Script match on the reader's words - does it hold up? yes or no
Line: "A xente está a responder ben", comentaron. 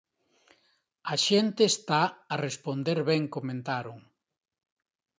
yes